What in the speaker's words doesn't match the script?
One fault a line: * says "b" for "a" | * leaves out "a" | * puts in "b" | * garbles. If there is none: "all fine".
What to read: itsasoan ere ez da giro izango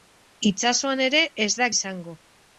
* leaves out "giro"